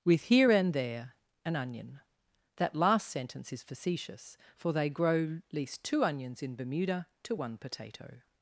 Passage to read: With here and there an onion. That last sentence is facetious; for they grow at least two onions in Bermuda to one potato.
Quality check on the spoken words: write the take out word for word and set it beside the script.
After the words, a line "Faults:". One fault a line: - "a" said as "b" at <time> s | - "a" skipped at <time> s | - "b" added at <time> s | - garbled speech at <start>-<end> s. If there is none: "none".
With here and there an onion. That last sentence is facetious; for they grow least two onions in Bermuda to one potato.
Faults:
- "at" skipped at 5.4 s